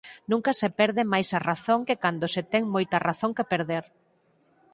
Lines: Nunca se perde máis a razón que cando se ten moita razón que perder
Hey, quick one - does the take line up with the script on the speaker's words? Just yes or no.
yes